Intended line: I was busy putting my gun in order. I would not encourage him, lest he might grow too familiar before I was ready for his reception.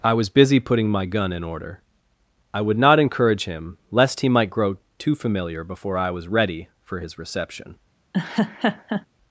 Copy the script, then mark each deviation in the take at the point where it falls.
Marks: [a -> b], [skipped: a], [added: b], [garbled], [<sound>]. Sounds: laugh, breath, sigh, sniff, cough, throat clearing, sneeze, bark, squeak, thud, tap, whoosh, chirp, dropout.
I was busy putting my gun in order. I would not encourage him, lest he might grow too familiar before I was ready for his reception. [laugh]